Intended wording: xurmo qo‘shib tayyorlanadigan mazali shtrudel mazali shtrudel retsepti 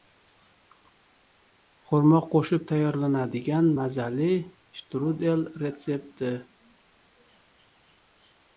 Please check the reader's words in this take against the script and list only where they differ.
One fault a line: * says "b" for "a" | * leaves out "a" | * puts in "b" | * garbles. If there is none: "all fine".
* leaves out "mazali shtrudel"